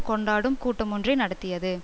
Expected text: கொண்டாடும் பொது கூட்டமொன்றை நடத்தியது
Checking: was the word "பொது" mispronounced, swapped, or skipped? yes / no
yes